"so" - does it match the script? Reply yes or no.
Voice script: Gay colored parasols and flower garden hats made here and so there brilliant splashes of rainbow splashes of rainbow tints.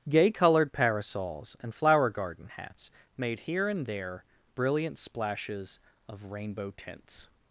no